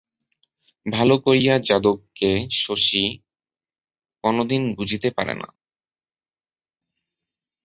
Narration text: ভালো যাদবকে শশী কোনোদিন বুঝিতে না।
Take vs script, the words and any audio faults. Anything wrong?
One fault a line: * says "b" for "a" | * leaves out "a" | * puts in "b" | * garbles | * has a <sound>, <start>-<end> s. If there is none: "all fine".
* puts in "করিয়া"
* puts in "পারে"